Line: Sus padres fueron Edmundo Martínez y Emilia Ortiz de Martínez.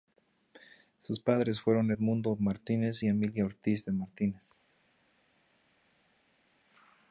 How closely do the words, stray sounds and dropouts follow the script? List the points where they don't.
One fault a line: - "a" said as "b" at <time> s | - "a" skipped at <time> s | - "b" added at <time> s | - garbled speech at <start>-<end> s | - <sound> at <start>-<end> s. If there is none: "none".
none